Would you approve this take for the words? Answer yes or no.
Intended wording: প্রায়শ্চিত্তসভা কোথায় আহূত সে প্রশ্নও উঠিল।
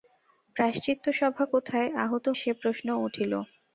yes